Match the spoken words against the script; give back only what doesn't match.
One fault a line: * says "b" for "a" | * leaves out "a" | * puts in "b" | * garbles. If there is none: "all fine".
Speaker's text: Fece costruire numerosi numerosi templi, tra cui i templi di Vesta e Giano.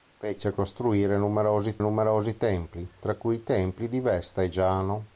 all fine